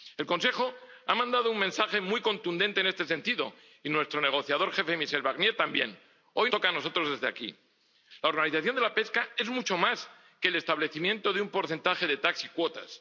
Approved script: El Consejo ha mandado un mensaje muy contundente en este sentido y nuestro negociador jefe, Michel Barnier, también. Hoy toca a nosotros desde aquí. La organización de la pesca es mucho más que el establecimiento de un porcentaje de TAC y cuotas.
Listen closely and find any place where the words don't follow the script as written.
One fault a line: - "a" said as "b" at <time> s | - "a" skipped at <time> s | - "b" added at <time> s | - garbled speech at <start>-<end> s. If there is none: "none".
none